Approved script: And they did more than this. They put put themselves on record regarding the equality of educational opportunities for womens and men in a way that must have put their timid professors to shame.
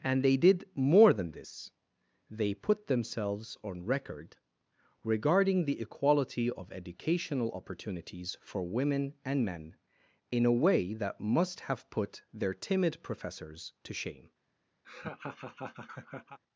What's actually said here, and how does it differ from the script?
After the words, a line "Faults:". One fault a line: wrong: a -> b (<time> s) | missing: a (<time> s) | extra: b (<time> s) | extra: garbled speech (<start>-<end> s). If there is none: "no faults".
And they did more than this. They put themselves on record regarding the equality of educational opportunities for women and men in a way that must have put their timid professors to shame.
Faults:
missing: put (2.9 s)
wrong: womens -> women (8.6 s)